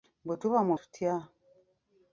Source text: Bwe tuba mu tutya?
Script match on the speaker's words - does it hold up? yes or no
yes